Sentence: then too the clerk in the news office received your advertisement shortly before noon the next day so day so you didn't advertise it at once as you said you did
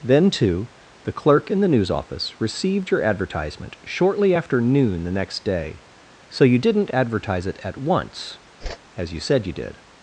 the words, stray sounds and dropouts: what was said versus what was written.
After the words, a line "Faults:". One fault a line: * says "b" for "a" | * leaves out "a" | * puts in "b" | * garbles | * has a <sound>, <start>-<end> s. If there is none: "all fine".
then too the clerk in the news office received your advertisement shortly after noon the next day so you didn't advertise it at once as you said you did
Faults:
* says "after" for "before"
* leaves out "day so"
* has a whoosh, 8.6-8.8 s